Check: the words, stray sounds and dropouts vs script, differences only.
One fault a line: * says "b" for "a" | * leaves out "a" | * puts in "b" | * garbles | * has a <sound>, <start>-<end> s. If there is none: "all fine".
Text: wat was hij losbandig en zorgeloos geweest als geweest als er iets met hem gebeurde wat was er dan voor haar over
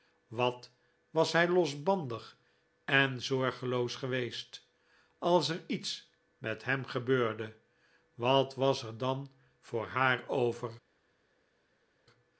* leaves out "geweest als"